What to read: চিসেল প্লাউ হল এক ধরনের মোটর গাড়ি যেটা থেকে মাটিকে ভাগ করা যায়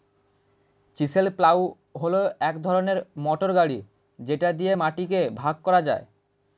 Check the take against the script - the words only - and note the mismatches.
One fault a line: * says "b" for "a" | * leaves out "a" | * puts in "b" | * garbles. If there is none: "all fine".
* says "দিয়ে" for "থেকে"